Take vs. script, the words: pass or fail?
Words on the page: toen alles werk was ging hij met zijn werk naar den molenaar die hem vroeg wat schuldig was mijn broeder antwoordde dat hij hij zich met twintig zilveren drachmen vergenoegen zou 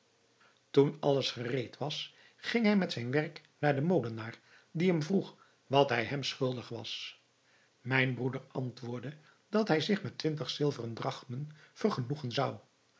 fail